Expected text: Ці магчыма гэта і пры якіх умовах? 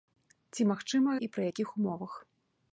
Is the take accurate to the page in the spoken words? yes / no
no